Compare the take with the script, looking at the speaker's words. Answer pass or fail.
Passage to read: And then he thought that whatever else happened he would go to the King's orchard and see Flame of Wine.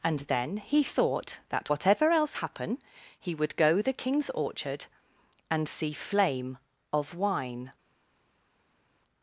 fail